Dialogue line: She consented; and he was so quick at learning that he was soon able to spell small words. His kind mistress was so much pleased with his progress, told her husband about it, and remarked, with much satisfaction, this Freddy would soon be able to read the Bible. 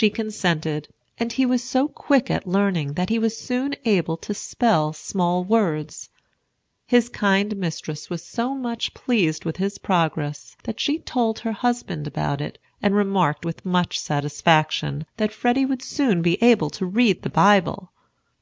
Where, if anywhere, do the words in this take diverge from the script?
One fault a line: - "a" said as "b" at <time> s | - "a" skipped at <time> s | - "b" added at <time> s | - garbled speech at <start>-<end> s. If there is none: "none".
- "that she" added at 10.6 s
- "this" said as "that" at 15.2 s